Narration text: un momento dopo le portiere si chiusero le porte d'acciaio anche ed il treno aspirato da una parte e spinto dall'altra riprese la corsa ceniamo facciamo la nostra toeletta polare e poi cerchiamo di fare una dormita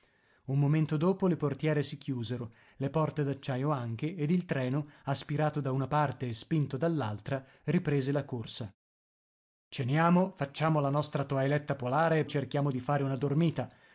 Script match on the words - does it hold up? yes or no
no